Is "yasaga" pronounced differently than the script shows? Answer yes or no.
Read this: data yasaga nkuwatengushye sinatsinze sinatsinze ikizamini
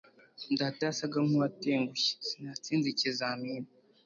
no